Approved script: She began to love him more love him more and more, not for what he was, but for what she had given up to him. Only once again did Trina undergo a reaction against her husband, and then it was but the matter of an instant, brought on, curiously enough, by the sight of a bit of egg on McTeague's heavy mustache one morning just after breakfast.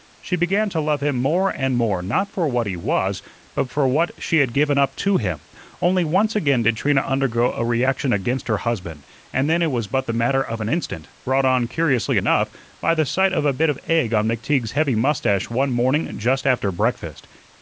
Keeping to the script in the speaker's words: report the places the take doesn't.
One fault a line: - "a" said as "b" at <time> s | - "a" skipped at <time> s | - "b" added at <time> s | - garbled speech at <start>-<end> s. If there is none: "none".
- "love him more" skipped at 1.5 s